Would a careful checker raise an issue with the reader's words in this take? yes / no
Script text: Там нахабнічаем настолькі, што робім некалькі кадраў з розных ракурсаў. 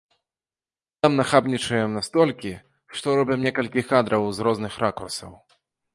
no